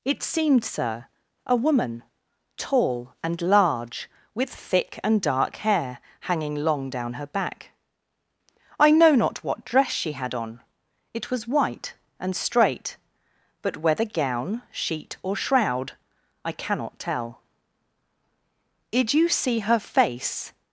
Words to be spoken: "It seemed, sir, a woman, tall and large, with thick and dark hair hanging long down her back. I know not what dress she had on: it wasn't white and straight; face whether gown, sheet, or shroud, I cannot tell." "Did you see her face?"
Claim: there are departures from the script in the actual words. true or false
true